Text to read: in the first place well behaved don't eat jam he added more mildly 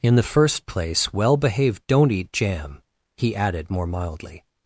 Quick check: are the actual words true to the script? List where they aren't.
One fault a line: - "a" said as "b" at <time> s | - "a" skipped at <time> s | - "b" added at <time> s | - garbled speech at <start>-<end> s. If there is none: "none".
none